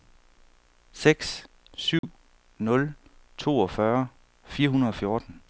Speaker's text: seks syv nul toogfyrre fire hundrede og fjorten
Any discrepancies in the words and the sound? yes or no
yes